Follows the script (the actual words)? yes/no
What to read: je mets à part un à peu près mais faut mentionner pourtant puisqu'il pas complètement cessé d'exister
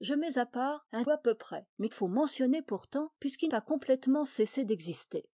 yes